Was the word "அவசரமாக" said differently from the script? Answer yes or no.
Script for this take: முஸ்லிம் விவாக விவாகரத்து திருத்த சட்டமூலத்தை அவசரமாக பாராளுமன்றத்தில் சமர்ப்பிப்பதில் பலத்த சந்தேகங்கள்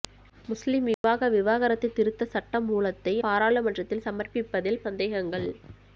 yes